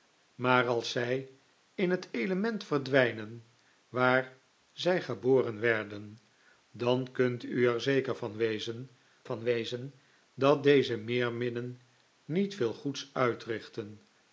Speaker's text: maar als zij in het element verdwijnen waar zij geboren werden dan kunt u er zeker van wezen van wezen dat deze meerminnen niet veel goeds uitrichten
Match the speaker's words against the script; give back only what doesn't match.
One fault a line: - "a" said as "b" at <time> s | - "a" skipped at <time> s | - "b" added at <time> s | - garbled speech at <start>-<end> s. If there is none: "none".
none